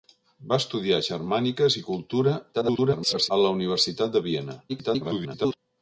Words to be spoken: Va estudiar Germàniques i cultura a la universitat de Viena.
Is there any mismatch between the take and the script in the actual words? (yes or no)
yes